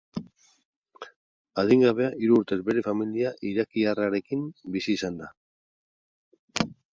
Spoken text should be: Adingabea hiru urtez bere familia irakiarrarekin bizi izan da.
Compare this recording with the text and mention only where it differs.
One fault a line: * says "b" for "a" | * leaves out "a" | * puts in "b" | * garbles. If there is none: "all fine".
all fine